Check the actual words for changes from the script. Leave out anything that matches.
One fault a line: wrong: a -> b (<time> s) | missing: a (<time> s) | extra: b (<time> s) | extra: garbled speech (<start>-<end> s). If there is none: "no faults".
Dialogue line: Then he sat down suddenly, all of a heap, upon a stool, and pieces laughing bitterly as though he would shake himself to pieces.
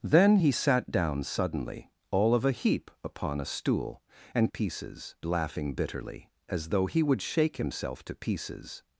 no faults